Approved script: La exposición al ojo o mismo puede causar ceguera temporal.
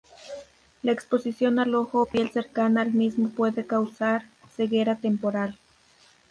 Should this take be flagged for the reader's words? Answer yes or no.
yes